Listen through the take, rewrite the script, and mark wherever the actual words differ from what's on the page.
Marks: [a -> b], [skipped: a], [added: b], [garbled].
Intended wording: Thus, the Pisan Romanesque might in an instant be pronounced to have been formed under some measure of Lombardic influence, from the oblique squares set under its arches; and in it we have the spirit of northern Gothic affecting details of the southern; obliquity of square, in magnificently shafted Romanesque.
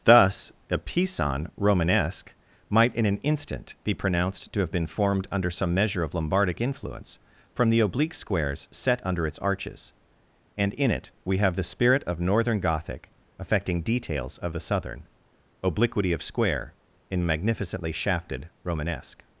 Thus, [the -> a] Pisan Romanesque might in an instant be pronounced to have been formed under some measure of Lombardic influence, from the oblique squares set under its arches; and in it we have the spirit of northern Gothic affecting details of the southern; obliquity of square, in magnificently shafted Romanesque.